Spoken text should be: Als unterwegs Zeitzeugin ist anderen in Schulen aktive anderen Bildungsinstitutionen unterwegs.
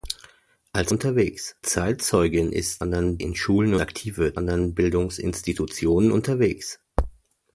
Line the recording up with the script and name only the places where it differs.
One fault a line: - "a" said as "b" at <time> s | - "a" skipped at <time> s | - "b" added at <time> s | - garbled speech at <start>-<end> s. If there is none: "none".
none